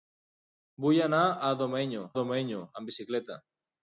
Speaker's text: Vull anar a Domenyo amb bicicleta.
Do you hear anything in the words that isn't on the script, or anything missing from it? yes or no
yes